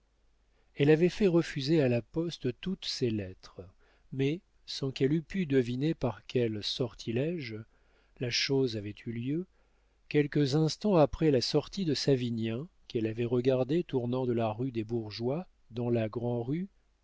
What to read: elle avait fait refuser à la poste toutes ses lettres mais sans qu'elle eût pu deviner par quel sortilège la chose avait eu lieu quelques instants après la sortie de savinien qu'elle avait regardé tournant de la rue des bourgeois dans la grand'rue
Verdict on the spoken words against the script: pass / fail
pass